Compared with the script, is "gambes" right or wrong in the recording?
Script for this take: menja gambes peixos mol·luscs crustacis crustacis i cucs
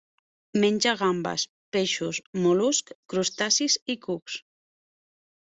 right